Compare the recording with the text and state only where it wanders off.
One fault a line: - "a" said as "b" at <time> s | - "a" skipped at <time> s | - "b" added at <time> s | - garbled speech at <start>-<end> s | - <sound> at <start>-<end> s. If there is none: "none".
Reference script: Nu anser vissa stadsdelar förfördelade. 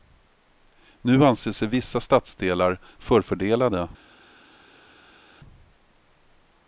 - "sig" added at 1.5 s